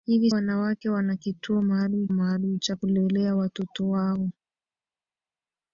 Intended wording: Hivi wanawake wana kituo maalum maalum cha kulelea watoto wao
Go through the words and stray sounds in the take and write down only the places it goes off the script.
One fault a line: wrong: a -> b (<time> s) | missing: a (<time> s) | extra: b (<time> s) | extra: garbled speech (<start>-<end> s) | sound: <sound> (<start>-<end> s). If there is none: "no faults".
no faults